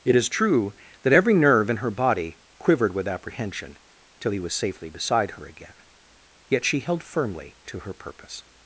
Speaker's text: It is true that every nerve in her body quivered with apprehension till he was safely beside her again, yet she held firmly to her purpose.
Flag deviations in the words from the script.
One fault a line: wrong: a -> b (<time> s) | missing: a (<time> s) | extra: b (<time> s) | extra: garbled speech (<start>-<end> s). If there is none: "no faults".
no faults